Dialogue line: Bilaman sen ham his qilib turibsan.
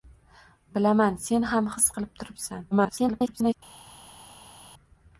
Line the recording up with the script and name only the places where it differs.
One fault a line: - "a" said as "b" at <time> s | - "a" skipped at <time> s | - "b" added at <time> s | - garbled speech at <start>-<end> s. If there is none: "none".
- garbled speech at 2.7-3.5 s